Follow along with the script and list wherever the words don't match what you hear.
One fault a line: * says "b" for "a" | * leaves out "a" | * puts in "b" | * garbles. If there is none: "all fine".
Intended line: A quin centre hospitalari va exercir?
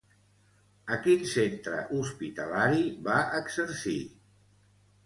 all fine